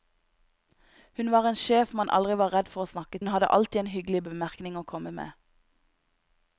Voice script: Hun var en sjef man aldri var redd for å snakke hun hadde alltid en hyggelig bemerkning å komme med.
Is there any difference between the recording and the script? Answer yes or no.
no